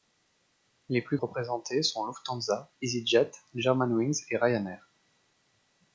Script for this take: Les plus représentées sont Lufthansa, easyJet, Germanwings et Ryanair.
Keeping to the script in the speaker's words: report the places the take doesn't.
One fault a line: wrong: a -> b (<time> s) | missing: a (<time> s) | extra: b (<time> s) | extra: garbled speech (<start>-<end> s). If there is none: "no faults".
no faults